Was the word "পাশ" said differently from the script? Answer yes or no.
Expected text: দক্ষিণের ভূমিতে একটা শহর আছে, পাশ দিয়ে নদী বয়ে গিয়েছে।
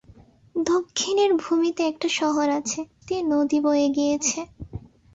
yes